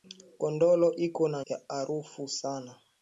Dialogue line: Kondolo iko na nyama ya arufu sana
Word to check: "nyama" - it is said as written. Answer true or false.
false